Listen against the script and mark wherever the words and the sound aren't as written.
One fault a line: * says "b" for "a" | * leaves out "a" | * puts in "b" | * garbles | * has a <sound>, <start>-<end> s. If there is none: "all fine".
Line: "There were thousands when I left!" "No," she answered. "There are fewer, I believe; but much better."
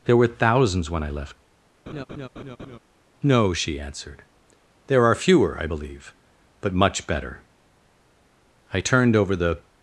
* has a laugh, 1.9-2.8 s
* puts in "I turned over the"